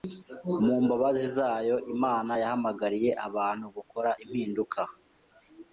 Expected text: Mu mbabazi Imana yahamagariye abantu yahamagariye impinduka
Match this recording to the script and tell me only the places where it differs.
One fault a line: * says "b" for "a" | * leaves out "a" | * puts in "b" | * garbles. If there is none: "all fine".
* puts in "zayo"
* says "gukora" for "yahamagariye"